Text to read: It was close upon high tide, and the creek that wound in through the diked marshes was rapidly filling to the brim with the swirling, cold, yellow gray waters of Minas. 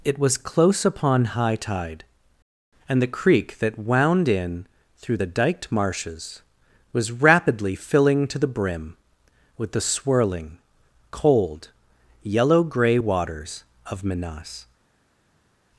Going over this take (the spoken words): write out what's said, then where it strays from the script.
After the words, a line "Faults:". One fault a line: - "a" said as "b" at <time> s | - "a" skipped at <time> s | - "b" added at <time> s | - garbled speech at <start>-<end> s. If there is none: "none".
It was close upon high tide, and the creek that wound in through the diked marshes was rapidly filling to the brim with the swirling, cold, yellow gray waters of Minas.
Faults:
none